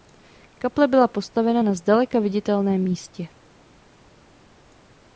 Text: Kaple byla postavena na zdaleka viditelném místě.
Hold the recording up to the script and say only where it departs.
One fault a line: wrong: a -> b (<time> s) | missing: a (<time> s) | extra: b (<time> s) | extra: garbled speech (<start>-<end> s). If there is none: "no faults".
no faults